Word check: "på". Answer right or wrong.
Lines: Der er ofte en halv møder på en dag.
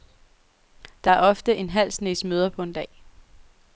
right